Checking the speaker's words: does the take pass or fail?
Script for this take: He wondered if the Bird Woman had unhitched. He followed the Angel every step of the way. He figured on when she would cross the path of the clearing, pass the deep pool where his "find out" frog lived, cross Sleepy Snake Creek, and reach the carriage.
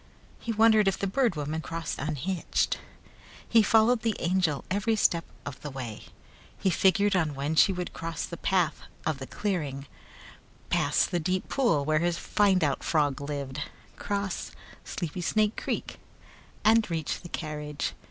fail